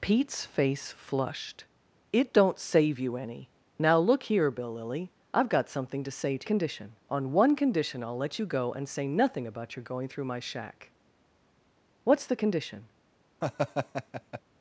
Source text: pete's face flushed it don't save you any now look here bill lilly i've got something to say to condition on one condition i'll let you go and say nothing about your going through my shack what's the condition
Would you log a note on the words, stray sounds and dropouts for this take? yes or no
yes